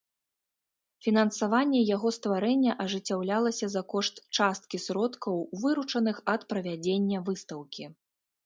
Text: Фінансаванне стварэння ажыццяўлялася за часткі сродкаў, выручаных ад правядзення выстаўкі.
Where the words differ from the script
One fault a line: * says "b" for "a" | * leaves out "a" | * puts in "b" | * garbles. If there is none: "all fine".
* puts in "яго"
* puts in "кошт"